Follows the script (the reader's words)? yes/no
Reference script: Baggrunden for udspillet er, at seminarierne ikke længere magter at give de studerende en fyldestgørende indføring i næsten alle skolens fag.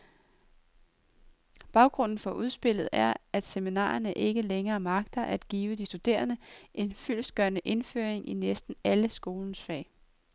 yes